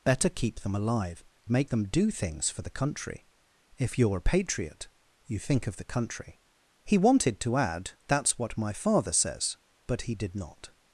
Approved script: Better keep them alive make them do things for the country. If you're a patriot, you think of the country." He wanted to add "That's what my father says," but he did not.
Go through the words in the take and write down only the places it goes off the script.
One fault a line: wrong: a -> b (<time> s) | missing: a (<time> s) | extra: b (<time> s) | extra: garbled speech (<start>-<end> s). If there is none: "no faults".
no faults